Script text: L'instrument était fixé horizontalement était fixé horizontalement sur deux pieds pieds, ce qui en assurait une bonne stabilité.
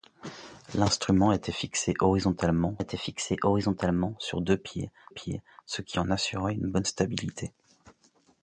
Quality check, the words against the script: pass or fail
pass